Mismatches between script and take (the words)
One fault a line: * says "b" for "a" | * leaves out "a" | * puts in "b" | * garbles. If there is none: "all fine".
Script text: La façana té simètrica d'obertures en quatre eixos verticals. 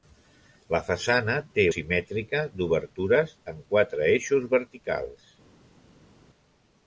all fine